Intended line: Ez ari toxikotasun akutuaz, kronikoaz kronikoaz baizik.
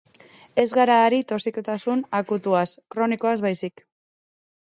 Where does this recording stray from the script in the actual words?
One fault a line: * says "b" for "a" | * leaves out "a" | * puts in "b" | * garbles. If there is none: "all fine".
* puts in "gara"
* leaves out "kronikoaz"